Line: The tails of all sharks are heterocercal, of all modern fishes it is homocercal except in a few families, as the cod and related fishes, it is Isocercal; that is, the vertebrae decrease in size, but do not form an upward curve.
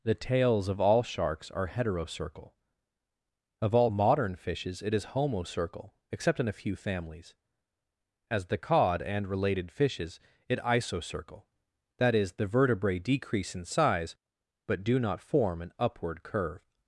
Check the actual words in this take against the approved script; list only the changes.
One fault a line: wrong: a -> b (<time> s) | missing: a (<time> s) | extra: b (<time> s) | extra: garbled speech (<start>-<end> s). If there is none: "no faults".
missing: is (10.6 s)